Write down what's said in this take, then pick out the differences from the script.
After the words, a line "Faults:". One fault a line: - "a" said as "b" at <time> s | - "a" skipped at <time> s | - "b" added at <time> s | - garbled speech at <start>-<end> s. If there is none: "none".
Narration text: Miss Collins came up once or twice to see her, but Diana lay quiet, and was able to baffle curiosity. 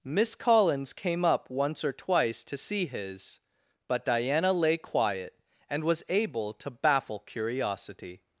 Miss Collins came up once or twice to see his, but Diana lay quiet, and was able to baffle curiosity.
Faults:
- "her" said as "his" at 2.9 s